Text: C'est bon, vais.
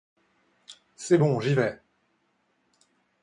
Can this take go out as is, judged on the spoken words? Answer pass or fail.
fail